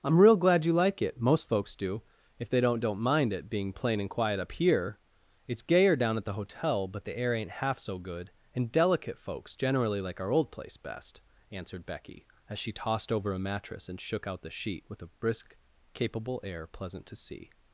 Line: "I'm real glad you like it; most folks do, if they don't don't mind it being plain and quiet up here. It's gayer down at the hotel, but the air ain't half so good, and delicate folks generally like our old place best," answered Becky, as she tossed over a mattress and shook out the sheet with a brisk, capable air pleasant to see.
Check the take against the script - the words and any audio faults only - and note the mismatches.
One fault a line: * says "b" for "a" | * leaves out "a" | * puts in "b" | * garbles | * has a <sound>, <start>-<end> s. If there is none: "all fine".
all fine